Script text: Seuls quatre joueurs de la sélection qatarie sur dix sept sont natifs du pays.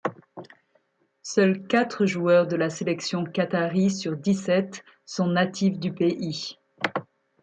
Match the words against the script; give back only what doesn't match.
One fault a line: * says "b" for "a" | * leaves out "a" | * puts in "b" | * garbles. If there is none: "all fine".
all fine